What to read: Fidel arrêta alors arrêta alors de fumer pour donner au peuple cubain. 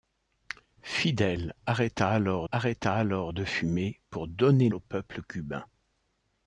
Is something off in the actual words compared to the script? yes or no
no